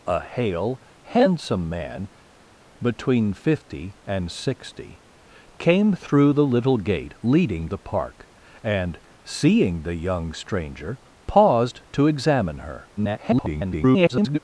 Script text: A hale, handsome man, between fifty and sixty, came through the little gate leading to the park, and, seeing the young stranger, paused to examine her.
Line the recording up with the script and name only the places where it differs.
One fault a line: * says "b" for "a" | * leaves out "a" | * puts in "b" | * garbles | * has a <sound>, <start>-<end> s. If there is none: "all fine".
* leaves out "to"
* garbles